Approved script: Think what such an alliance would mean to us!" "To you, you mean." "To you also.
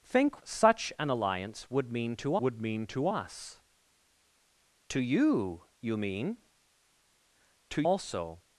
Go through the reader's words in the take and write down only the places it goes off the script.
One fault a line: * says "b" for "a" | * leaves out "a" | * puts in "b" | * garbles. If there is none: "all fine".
* leaves out "what"
* puts in "would mean to"
* leaves out "you"